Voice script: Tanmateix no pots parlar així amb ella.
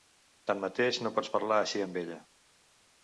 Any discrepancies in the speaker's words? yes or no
no